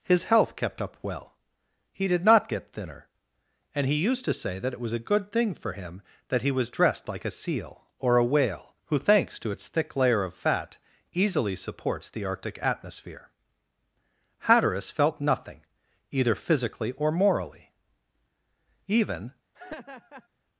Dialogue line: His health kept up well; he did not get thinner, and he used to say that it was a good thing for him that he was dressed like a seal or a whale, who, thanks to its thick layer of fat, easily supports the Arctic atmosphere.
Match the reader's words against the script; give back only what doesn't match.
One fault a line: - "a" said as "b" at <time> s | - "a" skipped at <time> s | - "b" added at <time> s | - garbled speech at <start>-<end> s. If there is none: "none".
- "Hatteras felt nothing either physically or morally Even" added at 14.4 s